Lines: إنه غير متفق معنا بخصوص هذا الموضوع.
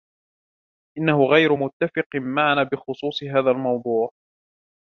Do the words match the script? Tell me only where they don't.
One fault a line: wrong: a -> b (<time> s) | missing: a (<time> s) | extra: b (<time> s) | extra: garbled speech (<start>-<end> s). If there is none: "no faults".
no faults